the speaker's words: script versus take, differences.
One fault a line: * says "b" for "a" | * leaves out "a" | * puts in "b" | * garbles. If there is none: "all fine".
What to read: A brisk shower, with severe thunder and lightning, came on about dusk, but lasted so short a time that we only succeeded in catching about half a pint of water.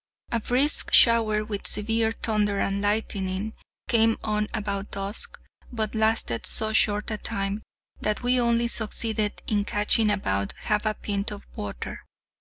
all fine